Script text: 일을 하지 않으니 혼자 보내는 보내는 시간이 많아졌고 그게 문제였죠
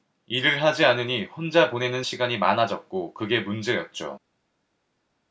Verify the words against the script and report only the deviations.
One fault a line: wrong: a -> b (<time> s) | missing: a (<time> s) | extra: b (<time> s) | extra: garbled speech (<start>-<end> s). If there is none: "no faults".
missing: 보내는 (2.0 s)